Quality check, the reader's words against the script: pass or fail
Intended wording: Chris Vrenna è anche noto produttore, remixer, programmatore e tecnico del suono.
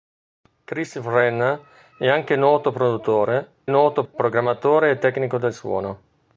fail